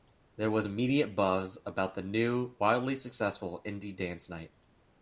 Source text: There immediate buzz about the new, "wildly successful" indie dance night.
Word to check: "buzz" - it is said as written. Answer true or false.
true